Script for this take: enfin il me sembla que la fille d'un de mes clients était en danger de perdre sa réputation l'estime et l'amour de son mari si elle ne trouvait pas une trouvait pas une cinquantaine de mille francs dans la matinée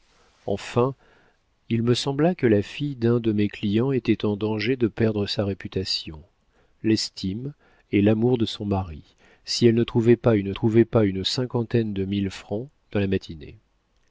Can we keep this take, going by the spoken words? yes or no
yes